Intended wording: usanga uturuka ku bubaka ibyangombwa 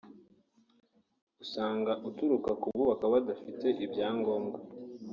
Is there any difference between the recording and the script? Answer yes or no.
yes